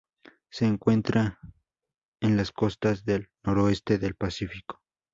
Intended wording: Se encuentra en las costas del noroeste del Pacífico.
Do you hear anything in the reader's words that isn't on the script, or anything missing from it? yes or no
no